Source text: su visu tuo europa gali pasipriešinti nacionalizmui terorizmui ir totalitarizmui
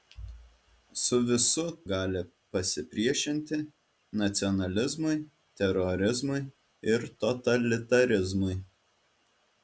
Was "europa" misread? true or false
true